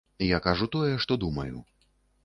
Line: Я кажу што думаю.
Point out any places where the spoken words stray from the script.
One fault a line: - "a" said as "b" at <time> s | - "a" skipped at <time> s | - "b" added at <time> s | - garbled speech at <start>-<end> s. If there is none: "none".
- "тое" added at 0.8 s